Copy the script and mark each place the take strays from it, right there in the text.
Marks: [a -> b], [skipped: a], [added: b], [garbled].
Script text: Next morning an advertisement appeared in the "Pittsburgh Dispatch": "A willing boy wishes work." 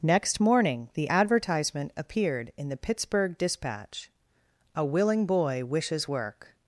Next morning [an -> the] advertisement appeared in the "Pittsburgh Dispatch": "A willing boy wishes work."